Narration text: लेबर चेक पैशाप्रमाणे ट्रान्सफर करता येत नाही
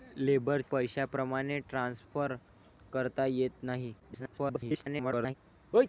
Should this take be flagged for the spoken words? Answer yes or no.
yes